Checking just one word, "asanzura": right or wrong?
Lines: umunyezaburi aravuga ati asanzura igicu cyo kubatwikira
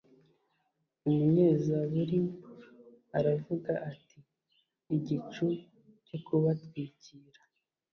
wrong